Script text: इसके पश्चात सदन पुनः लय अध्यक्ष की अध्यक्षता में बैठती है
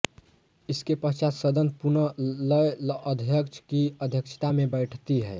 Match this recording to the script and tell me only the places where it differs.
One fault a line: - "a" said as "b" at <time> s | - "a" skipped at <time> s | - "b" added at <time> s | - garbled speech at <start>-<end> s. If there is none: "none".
none